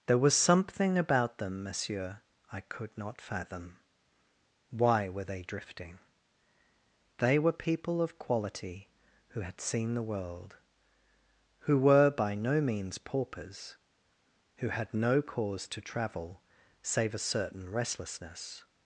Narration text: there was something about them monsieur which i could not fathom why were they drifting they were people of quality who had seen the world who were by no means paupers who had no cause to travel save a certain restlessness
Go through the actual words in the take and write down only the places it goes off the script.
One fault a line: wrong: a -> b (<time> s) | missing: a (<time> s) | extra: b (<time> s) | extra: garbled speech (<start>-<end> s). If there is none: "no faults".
missing: which (2.2 s)